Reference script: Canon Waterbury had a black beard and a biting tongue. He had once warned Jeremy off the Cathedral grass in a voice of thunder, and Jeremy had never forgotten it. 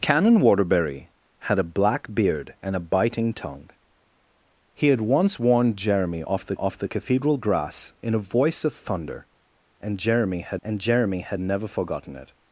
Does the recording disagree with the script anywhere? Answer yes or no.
yes